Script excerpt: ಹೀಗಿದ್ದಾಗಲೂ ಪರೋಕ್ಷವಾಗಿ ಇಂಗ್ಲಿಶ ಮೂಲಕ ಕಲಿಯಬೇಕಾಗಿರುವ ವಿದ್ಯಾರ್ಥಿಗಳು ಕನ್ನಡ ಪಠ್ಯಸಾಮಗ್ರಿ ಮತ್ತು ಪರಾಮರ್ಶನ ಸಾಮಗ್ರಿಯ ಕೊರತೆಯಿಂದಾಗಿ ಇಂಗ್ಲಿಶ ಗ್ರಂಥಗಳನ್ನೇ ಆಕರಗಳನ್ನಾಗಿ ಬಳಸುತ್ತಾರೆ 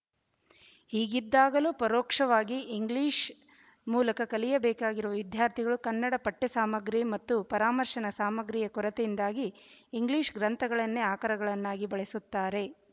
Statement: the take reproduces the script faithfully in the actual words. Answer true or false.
true